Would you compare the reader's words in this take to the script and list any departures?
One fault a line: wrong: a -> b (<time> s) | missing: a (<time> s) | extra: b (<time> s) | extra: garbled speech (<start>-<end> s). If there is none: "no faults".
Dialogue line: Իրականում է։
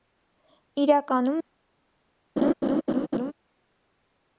no faults